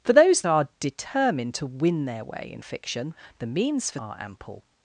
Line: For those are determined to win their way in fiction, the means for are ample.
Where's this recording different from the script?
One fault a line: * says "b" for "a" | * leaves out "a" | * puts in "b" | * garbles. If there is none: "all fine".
all fine